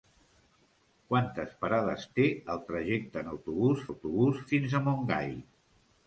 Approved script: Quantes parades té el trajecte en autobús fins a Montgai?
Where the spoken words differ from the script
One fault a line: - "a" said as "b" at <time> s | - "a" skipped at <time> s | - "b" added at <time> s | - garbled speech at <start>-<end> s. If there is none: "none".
- "autobús" added at 3.9 s